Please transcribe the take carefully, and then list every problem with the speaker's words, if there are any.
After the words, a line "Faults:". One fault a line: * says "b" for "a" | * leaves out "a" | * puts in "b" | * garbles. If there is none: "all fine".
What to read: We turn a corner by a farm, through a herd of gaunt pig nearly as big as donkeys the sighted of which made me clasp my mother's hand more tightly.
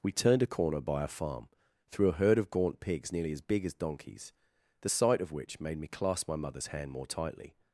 We turned a corner by a farm, through a herd of gaunt pigs nearly as big as donkeys the sight of which made me clasp my mother's hand more tightly.
Faults:
* says "turned" for "turn"
* says "pigs" for "pig"
* says "sight" for "sighted"